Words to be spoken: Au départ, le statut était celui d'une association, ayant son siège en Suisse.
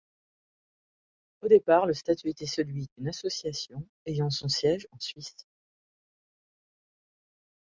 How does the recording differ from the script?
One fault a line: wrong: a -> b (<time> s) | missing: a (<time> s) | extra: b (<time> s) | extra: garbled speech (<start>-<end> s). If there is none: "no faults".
no faults